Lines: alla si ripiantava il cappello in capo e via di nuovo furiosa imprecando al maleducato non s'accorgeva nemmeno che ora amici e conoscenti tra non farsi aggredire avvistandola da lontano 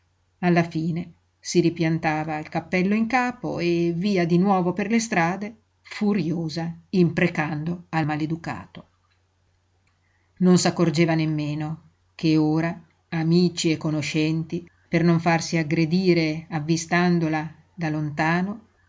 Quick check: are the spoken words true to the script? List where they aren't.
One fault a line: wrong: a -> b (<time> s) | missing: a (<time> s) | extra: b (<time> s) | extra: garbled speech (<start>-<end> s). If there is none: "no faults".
extra: fine (0.6 s)
extra: per le strade (4.7 s)
wrong: tra -> per (14.9 s)